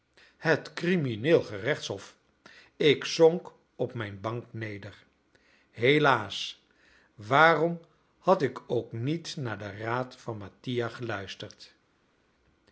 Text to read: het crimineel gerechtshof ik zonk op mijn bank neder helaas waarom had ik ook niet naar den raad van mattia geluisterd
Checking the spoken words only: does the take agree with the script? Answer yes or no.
yes